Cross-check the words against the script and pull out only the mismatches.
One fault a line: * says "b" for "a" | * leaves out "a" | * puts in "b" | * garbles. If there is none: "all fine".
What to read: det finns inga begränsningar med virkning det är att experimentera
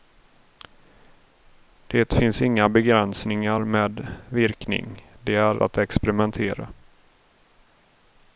all fine